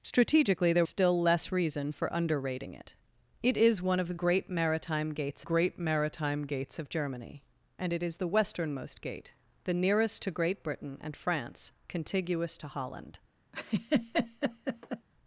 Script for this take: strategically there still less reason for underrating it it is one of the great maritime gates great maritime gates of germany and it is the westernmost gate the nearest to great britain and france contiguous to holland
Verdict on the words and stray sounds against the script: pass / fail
fail